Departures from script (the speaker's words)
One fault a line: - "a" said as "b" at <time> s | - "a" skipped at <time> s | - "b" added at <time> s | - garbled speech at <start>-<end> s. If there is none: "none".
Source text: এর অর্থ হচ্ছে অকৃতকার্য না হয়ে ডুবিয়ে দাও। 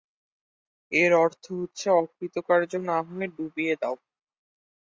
none